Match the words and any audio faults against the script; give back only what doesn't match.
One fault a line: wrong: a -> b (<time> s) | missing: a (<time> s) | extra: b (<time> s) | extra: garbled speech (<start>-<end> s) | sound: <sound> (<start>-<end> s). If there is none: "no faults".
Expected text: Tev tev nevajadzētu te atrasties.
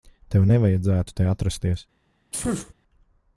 missing: tev (0.5 s)
sound: sneeze (2.3-2.7 s)